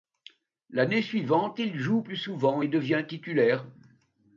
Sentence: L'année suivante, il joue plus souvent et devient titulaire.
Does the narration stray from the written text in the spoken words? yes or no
no